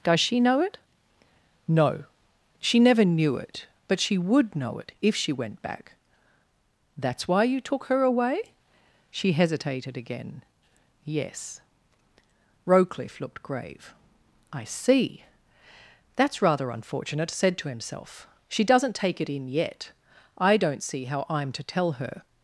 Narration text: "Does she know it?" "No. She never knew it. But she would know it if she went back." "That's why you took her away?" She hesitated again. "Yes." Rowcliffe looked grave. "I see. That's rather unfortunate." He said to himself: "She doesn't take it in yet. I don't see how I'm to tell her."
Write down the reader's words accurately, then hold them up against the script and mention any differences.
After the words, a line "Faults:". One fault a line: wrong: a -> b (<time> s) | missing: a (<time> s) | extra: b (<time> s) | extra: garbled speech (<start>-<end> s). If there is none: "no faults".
"Does she know it?" "No. She never knew it. But she would know it if she went back." "That's why you took her away?" She hesitated again. "Yes." Rowcliffe looked grave. "I see. That's rather unfortunate." said to himself: "She doesn't take it in yet. I don't see how I'm to tell her."
Faults:
missing: He (17.3 s)